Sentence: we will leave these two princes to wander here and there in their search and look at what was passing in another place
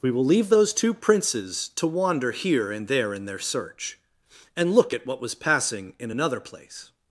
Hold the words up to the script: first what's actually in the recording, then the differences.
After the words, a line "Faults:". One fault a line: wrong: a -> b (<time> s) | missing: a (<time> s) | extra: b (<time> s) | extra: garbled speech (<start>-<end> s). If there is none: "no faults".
we will leave those two princes to wander here and there in their search and look at what was passing in another place
Faults:
wrong: these -> those (0.5 s)